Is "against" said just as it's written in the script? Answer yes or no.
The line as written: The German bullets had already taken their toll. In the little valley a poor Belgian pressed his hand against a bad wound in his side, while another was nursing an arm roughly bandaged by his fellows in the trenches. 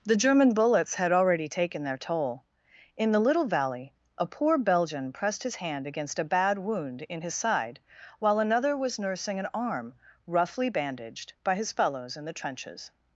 yes